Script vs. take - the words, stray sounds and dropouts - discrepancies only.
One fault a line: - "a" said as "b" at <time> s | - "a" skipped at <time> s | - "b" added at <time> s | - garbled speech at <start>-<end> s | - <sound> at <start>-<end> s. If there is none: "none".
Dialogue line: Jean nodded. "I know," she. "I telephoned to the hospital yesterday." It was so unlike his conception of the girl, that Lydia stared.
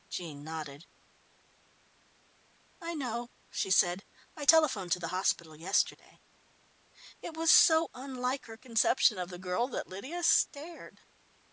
- "said" added at 3.7 s
- "his" said as "her" at 8.4 s